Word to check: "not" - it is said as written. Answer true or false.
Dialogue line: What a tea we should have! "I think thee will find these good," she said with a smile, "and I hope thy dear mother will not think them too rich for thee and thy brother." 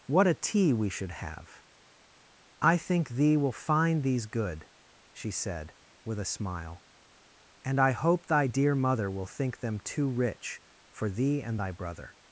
false